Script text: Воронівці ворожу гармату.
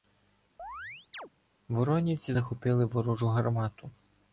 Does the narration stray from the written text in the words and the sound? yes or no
yes